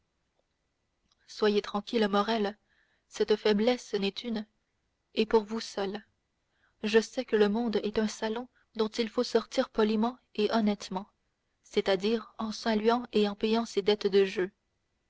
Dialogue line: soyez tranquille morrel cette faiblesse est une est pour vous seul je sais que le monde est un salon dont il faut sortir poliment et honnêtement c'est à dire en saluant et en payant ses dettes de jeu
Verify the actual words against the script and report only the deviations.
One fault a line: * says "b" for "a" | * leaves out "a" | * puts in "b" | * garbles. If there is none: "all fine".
all fine